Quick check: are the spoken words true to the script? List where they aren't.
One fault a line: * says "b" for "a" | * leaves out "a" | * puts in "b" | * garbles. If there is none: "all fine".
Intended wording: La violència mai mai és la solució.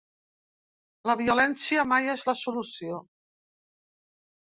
* leaves out "mai"